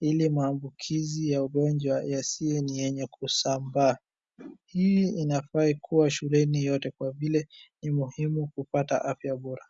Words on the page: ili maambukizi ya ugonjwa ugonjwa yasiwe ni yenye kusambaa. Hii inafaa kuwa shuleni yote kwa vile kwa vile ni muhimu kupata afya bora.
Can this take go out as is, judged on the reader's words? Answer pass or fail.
fail